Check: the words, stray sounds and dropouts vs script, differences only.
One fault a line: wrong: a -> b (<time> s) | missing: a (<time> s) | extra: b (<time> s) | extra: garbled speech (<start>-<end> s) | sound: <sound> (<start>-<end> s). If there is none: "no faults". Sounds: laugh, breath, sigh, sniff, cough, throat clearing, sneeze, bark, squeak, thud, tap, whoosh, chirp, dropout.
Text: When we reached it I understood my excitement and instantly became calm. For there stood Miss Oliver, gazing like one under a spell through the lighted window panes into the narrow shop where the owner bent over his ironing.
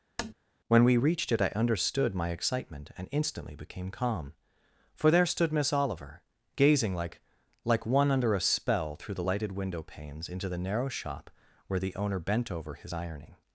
sound: tap (0.2-0.3 s)
extra: like (7.6 s)